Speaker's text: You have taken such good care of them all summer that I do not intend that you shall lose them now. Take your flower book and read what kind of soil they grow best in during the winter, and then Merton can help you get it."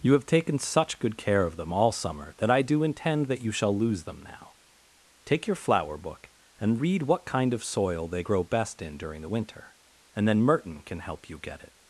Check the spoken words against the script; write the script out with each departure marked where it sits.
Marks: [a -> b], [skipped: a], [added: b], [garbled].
You have taken such good care of them all summer that I do [skipped: not] intend that you shall lose them now. Take your flower book and read what kind of soil they grow best in during the winter, and then Merton can help you get it."